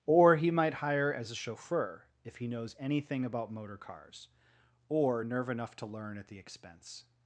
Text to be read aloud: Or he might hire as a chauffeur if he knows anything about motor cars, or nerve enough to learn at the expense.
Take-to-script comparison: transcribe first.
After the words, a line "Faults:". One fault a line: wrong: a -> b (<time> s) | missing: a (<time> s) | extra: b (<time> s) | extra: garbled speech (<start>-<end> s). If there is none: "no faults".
Or he might hire as a chauffeur if he knows anything about motor cars, or nerve enough to learn at the expense.
Faults:
no faults